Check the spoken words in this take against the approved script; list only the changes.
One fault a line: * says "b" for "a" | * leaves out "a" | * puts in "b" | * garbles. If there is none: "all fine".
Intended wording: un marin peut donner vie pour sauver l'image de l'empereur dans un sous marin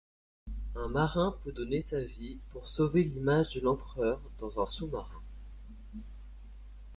* puts in "sa"